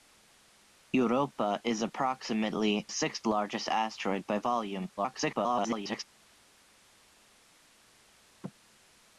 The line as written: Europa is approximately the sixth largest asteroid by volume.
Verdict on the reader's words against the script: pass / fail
fail